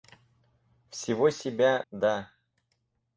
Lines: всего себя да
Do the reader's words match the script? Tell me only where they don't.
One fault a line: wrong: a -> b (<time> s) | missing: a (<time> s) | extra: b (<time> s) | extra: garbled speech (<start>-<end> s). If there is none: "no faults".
no faults